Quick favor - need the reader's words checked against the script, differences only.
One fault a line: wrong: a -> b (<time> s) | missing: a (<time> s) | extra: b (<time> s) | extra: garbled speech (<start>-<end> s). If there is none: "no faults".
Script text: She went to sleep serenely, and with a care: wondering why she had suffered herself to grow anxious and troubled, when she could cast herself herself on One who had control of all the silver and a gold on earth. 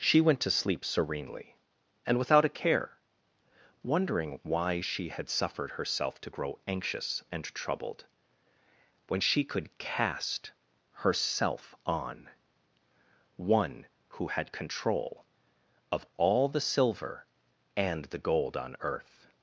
wrong: with -> without (2.2 s)
missing: herself (11.7 s)
wrong: a -> the (18.0 s)